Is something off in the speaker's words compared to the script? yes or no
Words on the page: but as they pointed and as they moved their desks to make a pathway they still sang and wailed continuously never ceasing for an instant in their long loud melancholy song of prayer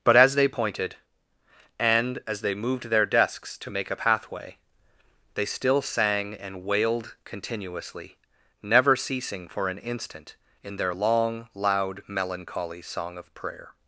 no